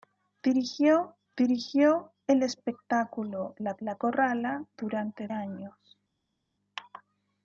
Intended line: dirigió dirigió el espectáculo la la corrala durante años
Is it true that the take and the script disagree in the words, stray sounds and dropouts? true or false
false